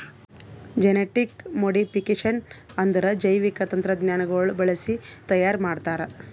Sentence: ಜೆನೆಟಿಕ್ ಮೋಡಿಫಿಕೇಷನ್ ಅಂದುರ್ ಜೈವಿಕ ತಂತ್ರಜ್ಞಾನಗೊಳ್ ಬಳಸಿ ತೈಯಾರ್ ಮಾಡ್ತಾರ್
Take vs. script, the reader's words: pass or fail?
pass